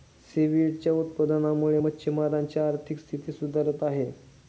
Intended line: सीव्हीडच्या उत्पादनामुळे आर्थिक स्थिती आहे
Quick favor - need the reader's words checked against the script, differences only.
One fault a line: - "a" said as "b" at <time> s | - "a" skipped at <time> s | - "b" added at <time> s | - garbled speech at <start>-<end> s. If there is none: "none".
- "मच्छिमारांची" added at 1.7 s
- "सुधारत" added at 3.3 s